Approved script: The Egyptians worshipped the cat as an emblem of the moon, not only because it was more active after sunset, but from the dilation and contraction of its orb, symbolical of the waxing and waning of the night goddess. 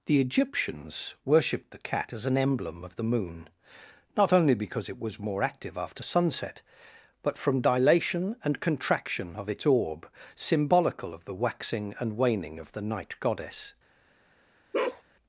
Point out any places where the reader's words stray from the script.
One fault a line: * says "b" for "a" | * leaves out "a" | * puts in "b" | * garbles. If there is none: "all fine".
* leaves out "the"